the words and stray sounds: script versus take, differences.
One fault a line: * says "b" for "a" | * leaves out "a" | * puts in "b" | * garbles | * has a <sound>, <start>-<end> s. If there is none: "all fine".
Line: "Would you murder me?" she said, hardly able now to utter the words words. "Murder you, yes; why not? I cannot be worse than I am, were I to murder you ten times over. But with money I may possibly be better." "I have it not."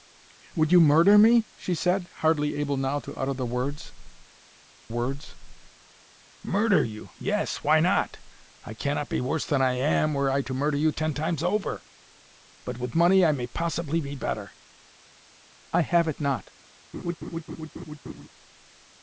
* has a laugh, 16.9-18.3 s